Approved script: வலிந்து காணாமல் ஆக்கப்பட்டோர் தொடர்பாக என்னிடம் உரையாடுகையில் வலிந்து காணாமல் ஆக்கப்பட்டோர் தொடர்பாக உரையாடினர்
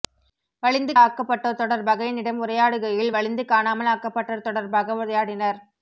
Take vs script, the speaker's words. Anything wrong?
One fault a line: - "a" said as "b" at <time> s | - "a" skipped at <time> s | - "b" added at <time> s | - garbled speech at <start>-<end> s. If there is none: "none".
- "காணாமல்" skipped at 0.9 s